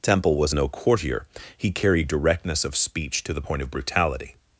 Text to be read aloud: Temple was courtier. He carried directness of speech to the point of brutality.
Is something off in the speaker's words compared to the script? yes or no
yes